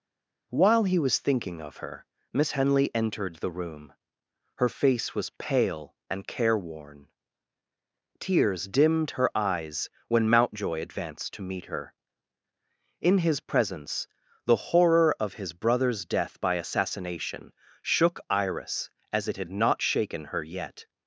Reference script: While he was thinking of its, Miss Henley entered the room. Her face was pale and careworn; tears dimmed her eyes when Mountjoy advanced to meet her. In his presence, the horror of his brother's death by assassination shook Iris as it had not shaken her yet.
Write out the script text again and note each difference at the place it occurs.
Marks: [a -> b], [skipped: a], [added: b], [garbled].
While he was thinking of [its, -> her] Miss Henley entered the room. Her face was pale and careworn; tears dimmed her eyes when Mountjoy advanced to meet her. In his presence, the horror of his brother's death by assassination shook Iris as it had not shaken her yet.